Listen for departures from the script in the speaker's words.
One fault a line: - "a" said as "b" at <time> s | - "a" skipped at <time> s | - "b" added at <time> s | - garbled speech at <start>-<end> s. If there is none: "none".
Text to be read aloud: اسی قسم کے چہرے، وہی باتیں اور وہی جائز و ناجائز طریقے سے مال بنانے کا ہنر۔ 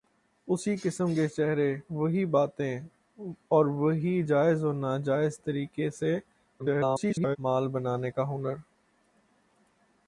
- garbled speech at 6.6-7.4 s